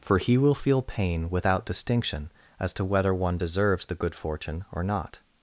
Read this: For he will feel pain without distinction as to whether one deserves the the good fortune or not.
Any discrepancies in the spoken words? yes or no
yes